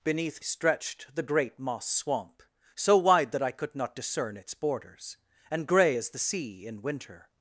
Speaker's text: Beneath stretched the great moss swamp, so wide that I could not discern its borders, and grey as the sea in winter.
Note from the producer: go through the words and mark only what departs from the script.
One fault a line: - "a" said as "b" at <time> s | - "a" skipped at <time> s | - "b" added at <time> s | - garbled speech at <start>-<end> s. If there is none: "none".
none